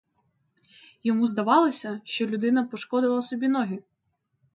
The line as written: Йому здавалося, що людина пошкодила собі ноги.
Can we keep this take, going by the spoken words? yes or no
yes